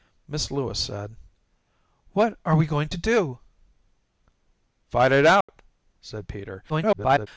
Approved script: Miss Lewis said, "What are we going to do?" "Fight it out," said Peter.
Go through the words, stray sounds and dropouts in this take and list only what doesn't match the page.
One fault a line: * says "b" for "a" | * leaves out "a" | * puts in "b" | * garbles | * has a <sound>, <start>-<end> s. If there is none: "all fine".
* has a dropout, 5.4-5.5 s
* garbles